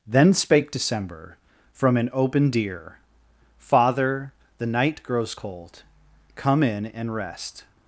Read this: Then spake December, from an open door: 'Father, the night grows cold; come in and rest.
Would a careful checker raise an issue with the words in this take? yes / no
yes